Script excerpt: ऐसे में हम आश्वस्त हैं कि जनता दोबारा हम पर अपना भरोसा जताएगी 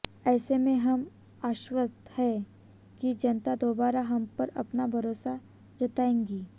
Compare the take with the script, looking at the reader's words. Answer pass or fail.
pass